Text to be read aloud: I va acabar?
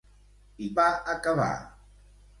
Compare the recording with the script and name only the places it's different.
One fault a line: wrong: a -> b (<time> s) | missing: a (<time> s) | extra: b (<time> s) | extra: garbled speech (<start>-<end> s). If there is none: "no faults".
no faults